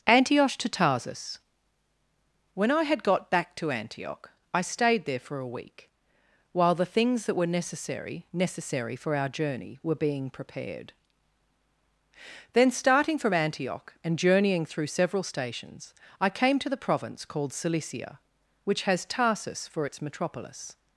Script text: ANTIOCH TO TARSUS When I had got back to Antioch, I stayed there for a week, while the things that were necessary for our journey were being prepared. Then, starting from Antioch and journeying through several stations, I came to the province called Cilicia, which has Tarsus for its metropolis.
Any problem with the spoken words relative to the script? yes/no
yes